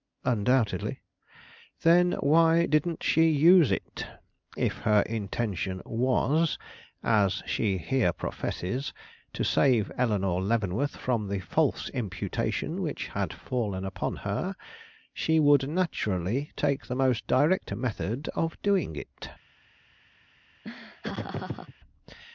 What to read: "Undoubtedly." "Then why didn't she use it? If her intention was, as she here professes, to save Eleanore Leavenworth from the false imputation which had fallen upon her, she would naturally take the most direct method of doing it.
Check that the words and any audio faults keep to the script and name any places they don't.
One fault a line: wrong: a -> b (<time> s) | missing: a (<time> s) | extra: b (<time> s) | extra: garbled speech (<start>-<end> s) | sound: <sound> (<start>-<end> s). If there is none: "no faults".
sound: laugh (20.6-21.7 s)